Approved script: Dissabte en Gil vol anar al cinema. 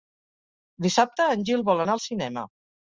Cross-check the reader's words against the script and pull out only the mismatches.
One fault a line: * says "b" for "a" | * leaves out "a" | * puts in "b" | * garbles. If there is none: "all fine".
all fine